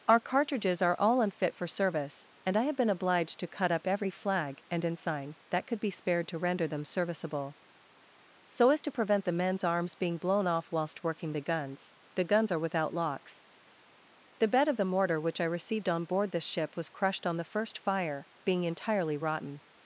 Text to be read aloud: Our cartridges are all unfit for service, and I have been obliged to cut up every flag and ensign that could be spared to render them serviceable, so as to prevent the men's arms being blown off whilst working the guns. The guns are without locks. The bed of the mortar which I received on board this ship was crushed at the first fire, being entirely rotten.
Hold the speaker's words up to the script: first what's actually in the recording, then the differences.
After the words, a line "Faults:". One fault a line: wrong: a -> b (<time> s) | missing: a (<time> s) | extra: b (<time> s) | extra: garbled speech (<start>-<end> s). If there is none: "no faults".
Our cartridges are all unfit for service, and I have been obliged to cut up every flag and ensign that could be spared to render them serviceable, so as to prevent the men's arms being blown off whilst working the guns. The guns are without locks. The bed of the mortar which I received on board this ship was crushed on the first fire, being entirely rotten.
Faults:
wrong: at -> on (17.2 s)